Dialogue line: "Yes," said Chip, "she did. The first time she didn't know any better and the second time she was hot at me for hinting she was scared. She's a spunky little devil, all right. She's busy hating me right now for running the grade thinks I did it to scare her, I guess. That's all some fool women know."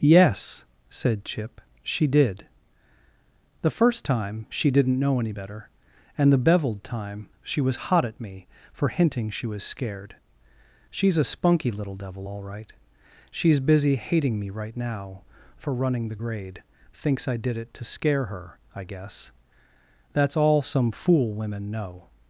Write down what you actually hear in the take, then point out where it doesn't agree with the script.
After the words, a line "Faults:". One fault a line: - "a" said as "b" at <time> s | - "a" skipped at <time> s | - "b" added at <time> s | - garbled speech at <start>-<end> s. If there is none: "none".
"Yes," said Chip, "she did. The first time she didn't know any better and the beveled time she was hot at me for hinting she was scared. She's a spunky little devil, all right. She's busy hating me right now for running the grade thinks I did it to scare her, I guess. That's all some fool women know."
Faults:
- "second" said as "beveled" at 6.4 s